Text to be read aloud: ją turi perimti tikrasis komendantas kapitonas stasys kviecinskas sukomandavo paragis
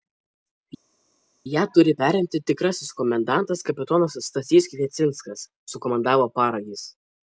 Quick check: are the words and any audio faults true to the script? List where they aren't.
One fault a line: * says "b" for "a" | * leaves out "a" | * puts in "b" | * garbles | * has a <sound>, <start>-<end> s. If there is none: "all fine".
all fine